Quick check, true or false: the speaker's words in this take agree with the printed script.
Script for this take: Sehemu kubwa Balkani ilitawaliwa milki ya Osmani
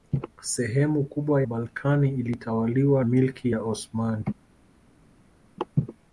true